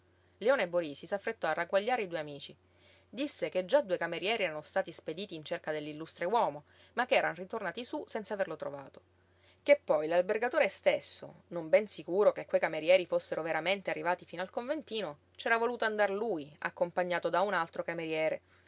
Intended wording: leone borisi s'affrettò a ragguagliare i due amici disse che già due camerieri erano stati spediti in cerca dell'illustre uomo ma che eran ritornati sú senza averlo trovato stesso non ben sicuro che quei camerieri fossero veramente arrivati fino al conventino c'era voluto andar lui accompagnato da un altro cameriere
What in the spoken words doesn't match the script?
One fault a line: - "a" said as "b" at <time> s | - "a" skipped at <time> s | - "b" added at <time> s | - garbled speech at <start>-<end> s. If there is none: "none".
- "che poi l'albergatore" added at 9.6 s